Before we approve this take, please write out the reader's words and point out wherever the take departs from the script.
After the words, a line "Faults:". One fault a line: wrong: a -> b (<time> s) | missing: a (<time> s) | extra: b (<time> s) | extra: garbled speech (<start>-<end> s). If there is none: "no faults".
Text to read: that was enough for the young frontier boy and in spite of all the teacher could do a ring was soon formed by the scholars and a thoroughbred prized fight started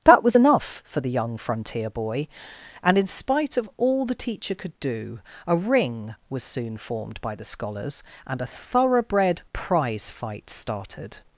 that was enough for the young frontier boy and in spite of all the teacher could do a ring was soon formed by the scholars and a thoroughbred prize fight started
Faults:
wrong: prized -> prize (9.5 s)